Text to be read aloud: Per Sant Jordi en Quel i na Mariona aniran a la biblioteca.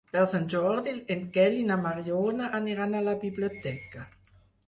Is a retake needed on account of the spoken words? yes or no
no